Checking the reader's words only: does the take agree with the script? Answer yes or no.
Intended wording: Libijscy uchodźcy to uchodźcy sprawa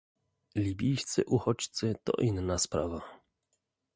no